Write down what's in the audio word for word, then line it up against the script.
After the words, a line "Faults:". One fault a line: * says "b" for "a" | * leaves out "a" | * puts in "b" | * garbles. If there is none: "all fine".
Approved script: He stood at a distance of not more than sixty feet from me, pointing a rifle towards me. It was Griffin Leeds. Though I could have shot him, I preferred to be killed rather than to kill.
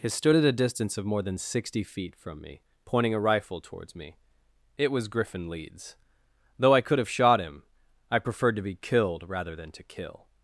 He stood at a distance of more than sixty feet from me, pointing a rifle towards me. It was Griffin Leeds. Though I could have shot him, I preferred to be killed rather than to kill.
Faults:
* leaves out "not"